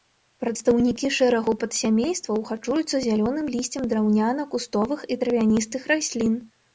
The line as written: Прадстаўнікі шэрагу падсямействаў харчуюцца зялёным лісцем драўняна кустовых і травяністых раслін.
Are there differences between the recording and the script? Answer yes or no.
no